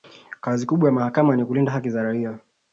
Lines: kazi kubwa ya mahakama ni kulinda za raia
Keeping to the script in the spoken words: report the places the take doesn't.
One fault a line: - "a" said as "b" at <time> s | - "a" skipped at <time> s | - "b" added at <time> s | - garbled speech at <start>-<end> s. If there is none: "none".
- "haki" added at 1.7 s